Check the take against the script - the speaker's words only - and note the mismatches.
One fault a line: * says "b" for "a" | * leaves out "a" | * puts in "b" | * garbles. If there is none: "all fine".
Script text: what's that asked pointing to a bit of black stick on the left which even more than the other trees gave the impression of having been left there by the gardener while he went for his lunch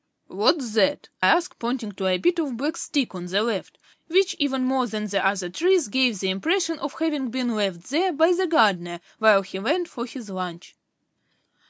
all fine